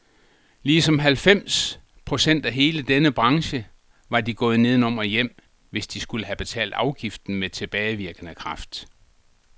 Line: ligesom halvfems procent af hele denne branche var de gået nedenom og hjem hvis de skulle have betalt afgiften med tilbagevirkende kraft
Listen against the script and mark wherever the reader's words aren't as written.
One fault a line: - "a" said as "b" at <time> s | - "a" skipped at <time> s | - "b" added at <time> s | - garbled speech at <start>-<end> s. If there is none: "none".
none